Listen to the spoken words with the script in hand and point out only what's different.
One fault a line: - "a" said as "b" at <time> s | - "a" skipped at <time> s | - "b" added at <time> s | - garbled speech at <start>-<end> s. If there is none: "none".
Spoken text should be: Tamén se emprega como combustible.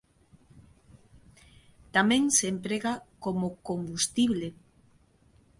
none